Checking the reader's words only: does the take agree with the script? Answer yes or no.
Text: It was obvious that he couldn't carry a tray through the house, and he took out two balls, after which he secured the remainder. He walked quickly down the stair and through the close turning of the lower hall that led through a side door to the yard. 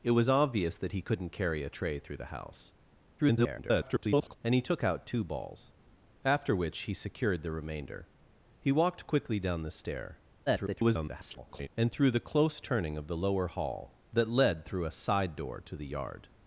no